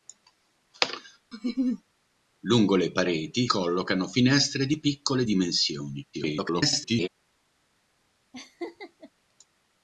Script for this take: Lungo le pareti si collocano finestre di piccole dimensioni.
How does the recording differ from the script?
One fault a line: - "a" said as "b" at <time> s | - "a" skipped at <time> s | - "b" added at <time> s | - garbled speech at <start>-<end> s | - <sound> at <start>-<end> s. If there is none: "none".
- laugh at 1.3-1.8 s
- "si" skipped at 3.5 s
- garbled speech at 6.1-7.1 s
- laugh at 8.3-9.1 s